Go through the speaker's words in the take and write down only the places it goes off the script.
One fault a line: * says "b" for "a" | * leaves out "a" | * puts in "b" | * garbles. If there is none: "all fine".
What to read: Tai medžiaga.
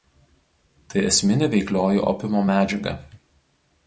* puts in "esminė veiklioji opiumo"